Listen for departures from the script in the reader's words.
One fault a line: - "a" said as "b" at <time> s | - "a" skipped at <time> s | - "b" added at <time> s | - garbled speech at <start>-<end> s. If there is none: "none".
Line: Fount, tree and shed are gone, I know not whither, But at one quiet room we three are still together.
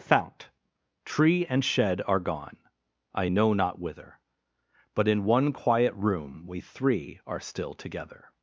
- "at" said as "in" at 5.1 s